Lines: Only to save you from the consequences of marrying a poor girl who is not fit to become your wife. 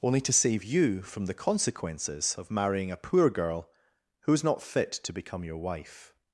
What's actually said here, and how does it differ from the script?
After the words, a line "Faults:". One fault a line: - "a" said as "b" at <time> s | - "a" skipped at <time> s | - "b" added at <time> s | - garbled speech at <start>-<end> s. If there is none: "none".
Only to save you from the consequences of marrying a poor girl who is not fit to become your wife.
Faults:
none